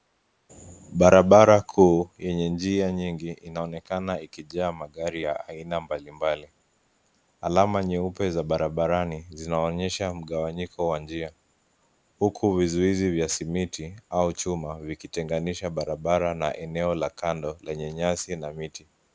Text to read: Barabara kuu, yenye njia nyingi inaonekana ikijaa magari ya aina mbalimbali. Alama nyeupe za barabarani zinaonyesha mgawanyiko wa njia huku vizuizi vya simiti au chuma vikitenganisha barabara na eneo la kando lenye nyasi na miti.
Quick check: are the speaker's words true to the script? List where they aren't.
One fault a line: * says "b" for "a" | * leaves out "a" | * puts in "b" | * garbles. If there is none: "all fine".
all fine